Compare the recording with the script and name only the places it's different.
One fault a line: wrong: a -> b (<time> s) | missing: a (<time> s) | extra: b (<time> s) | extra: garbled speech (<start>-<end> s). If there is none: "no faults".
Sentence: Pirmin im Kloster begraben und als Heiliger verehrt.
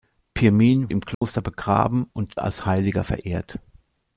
no faults